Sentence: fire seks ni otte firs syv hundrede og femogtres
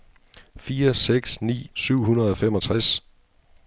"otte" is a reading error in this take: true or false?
true